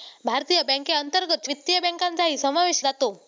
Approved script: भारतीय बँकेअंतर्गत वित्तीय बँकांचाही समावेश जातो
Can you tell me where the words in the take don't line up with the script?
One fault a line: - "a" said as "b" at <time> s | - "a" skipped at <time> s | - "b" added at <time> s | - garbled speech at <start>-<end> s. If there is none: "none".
none